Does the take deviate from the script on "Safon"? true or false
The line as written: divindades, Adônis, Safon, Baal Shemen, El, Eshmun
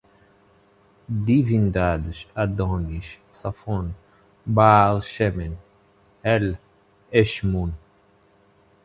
false